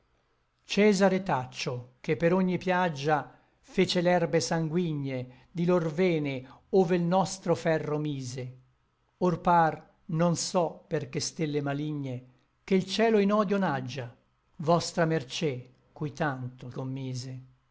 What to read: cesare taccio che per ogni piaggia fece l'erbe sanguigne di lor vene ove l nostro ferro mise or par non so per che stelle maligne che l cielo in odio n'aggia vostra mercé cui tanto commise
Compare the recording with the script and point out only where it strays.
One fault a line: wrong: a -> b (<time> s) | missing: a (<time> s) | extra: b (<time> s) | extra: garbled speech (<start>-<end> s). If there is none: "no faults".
no faults